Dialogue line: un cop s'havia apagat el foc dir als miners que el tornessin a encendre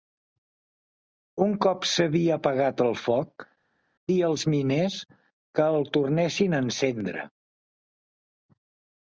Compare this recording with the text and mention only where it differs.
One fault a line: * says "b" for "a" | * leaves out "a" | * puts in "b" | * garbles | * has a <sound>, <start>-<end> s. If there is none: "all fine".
all fine